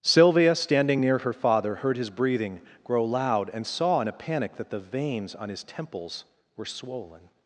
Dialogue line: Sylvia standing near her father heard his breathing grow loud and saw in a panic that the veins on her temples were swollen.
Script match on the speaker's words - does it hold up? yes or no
no